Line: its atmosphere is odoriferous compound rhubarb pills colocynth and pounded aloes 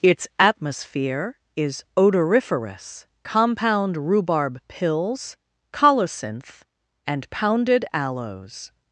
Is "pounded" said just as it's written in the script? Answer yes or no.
yes